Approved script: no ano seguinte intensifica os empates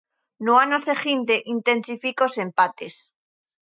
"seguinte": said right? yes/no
yes